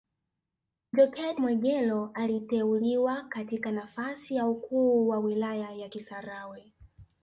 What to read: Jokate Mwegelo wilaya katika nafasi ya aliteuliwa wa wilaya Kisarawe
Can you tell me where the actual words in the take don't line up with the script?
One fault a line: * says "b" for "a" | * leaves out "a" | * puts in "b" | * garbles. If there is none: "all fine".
* says "aliteuliwa" for "wilaya"
* says "ukuu" for "aliteuliwa"
* puts in "ya"